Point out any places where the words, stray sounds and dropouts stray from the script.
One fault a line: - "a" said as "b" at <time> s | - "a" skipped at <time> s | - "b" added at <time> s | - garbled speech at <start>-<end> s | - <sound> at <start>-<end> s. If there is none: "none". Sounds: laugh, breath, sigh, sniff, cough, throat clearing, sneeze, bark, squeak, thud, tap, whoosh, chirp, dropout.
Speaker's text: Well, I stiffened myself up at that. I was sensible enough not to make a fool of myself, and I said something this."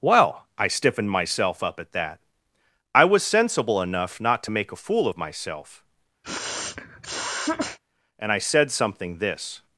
- sniff at 6.2-7.8 s